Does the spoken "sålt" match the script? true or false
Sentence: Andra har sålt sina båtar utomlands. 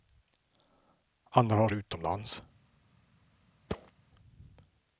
false